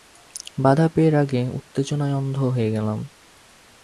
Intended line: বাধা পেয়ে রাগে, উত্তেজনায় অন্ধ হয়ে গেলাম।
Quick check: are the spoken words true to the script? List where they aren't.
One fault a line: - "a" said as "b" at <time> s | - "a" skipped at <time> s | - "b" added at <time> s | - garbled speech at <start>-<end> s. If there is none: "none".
none